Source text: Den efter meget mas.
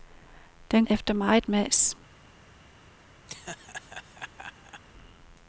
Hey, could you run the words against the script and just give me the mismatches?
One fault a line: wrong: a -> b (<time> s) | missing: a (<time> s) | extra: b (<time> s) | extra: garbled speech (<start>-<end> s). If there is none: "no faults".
no faults